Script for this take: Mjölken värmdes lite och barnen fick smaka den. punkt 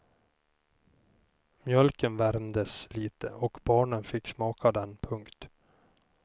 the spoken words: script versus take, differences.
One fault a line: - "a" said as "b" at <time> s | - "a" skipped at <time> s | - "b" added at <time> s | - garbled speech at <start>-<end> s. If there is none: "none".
none